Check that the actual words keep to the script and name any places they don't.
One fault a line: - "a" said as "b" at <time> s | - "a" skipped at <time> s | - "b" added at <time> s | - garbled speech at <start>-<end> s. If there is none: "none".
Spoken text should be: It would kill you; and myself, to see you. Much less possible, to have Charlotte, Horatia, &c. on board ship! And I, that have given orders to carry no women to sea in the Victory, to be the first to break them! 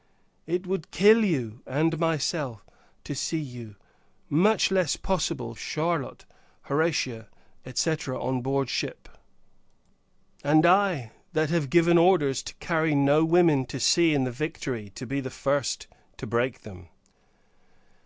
- "to have" skipped at 5.5 s